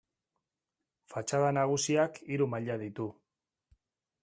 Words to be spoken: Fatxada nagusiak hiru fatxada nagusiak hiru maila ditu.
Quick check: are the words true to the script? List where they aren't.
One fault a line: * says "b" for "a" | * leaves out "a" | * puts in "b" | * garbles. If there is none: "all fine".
* leaves out "fatxada nagusiak hiru"